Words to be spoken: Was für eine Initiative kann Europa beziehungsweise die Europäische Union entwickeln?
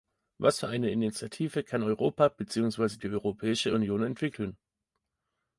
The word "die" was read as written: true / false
true